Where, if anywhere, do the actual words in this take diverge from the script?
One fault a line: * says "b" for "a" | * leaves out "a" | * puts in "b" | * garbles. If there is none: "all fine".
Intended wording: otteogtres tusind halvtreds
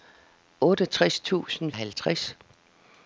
all fine